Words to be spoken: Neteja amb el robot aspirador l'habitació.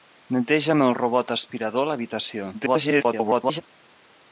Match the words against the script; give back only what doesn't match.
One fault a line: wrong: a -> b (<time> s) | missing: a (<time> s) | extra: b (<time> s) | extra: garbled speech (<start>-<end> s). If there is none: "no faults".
extra: garbled speech (2.5-3.6 s)